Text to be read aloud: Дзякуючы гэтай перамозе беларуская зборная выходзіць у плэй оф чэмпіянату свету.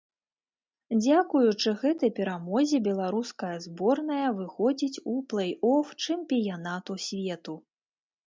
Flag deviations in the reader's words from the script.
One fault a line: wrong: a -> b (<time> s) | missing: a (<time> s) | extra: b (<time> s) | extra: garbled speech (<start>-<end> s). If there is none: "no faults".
no faults